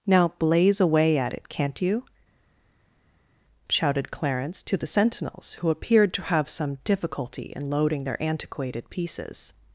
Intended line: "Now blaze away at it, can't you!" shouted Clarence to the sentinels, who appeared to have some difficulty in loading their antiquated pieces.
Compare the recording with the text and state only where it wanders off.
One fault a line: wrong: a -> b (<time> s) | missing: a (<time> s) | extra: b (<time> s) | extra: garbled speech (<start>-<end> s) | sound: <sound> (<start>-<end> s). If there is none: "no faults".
no faults